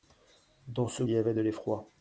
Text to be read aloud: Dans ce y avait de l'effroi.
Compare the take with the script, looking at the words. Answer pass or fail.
pass